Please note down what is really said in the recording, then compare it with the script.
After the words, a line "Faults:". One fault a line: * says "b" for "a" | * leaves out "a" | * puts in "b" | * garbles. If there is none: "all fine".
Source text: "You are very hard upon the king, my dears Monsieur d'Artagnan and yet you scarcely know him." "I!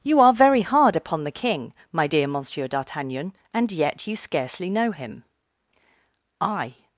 "You are very hard upon the king, my dear Monsieur d'Artagnan and yet you scarcely know him." "I!
Faults:
* says "dear" for "dears"